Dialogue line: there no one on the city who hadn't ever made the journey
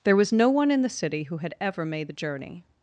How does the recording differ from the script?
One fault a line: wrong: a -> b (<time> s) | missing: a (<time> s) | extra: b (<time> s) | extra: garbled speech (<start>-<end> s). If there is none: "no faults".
extra: was (0.1 s)
wrong: on -> in (0.7 s)
wrong: hadn't -> had (1.4 s)